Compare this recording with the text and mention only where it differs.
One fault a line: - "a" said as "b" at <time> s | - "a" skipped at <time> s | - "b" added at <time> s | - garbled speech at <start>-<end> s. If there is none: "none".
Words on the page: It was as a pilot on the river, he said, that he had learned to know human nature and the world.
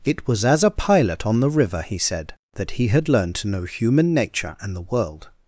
none